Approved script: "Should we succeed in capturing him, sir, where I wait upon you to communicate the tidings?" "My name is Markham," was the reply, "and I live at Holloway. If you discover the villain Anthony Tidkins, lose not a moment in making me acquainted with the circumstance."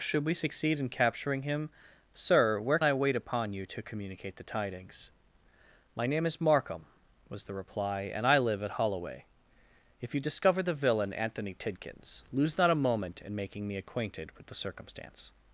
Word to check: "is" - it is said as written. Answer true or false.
true